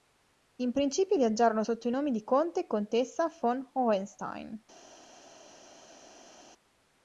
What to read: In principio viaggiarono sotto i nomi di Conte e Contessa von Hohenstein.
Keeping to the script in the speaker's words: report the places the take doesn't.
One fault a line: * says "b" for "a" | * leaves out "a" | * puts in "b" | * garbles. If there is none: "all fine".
all fine